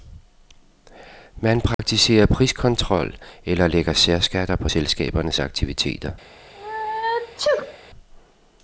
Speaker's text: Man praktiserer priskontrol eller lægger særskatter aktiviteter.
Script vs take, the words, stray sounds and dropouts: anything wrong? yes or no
yes